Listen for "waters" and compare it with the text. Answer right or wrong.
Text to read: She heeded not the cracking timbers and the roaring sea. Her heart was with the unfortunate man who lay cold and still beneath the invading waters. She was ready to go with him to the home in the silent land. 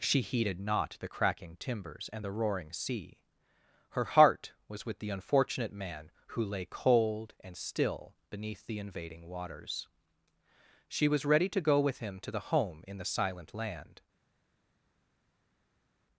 right